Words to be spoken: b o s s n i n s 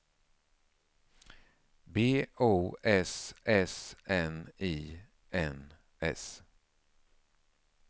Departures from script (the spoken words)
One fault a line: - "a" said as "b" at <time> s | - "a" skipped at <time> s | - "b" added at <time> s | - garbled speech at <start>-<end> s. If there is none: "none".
none